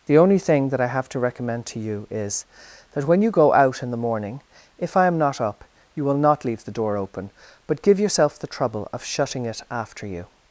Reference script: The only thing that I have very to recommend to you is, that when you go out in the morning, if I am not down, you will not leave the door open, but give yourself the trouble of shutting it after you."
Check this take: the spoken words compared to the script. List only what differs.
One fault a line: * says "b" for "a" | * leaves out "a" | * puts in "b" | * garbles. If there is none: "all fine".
* leaves out "very"
* says "up" for "down"